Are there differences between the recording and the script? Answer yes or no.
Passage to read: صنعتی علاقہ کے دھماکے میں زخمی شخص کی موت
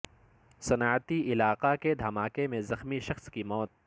no